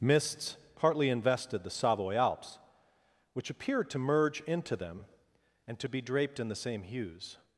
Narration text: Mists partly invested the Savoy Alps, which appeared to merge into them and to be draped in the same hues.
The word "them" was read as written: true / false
true